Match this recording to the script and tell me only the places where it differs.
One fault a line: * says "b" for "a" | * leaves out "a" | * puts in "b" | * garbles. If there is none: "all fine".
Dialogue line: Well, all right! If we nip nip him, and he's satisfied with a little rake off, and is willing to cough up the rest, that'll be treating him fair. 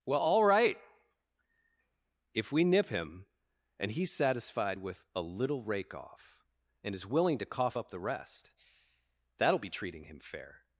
* leaves out "nip"